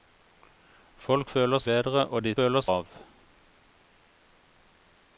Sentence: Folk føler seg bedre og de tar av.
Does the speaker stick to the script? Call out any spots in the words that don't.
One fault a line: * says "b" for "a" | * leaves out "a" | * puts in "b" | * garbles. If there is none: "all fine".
* leaves out "seg"
* says "føler" for "tar"